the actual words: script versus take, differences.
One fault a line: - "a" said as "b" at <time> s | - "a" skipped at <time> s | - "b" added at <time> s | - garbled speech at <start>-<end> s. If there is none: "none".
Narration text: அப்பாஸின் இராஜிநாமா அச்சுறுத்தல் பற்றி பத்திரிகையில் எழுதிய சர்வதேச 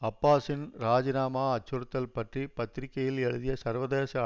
none